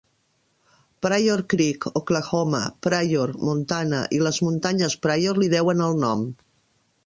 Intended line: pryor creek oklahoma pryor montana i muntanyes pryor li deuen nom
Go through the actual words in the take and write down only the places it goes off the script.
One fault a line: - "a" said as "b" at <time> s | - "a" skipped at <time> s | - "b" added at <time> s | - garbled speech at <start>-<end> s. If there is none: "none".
- "les" added at 4.3 s
- "el" added at 5.9 s